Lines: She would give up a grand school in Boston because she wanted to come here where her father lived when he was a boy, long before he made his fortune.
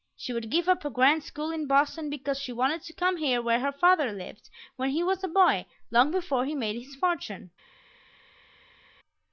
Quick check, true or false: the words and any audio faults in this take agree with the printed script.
true